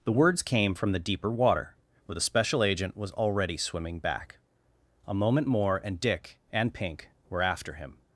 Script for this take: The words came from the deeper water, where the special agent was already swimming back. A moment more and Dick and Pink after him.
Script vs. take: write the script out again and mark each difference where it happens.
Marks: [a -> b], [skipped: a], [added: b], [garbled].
The words came from the deeper water, where the special agent was already swimming back. A moment more and Dick and Pink [added: were] after him.